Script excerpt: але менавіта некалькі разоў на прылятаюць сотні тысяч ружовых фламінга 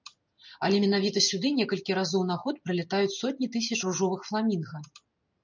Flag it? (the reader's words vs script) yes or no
yes